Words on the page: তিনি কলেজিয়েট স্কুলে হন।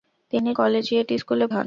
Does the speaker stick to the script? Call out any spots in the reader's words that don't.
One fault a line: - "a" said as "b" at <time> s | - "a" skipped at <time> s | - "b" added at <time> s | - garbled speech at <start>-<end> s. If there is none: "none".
none